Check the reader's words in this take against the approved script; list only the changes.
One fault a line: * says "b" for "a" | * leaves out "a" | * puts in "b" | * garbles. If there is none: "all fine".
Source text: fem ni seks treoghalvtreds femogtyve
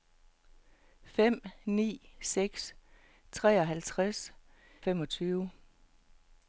all fine